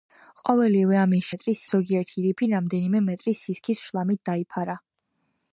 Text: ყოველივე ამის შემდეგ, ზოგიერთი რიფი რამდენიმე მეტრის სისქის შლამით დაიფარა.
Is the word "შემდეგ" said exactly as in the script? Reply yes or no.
no